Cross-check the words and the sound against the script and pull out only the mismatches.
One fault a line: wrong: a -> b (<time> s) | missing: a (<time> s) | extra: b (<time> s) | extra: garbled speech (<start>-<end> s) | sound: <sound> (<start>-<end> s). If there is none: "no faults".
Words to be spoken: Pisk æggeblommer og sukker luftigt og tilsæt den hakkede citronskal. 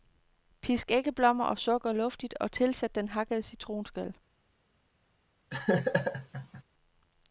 sound: laugh (5.5-6.6 s)